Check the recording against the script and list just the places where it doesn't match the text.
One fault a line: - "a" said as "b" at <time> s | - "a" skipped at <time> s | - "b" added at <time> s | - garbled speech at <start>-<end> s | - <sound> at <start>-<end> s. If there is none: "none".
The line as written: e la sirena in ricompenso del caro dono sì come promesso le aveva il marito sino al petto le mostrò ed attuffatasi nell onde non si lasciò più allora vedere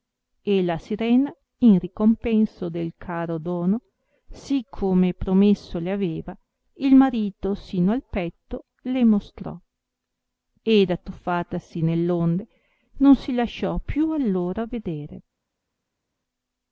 none